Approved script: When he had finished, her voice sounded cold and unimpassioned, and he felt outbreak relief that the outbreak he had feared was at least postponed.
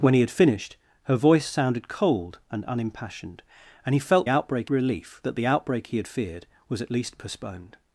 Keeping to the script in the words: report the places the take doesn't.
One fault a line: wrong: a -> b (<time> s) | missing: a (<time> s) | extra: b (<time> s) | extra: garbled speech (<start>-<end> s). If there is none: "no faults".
no faults